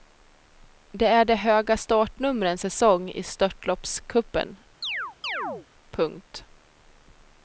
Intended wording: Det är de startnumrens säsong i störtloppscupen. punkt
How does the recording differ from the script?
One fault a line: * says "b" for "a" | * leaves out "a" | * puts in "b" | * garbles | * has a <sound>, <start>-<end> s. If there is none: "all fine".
* puts in "höga"
* has a chirp, 4.8-5.7 s